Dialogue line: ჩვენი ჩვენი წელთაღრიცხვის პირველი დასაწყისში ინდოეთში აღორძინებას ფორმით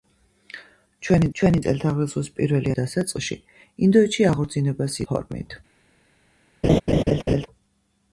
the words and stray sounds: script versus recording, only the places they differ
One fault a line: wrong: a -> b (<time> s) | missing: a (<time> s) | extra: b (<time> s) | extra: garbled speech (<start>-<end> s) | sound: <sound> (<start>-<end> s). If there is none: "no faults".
sound: laugh (6.6-7.5 s)